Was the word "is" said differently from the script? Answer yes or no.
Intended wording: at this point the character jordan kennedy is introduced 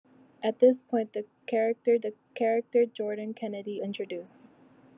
yes